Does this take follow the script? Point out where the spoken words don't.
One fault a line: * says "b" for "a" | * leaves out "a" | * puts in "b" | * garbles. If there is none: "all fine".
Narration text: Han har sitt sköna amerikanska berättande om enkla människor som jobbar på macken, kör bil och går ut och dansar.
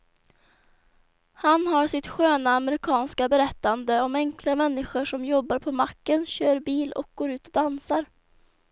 all fine